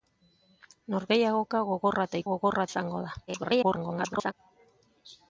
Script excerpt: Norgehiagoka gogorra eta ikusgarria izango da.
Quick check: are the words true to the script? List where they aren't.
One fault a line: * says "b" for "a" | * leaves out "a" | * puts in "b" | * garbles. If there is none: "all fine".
* says "gogorra" for "ikusgarria"
* garbles